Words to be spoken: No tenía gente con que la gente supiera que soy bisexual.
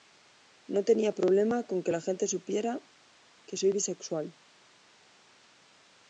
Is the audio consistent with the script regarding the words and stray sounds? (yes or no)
no